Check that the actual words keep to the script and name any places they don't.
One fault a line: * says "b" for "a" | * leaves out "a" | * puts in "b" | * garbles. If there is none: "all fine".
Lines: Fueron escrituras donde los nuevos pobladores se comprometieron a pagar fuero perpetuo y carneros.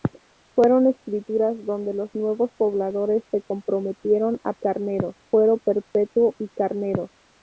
* says "carneros" for "pagar"